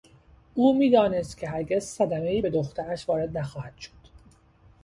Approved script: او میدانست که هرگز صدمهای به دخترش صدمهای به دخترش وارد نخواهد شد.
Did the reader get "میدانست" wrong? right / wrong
right